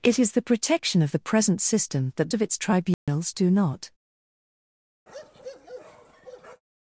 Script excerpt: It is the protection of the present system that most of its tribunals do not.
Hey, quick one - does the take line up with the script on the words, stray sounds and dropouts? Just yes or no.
no